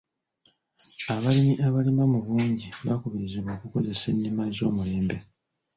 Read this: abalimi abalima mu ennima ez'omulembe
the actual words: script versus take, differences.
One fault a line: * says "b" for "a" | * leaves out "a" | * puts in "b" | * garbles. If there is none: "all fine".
* puts in "bungi bakubirizibwa okukozesa"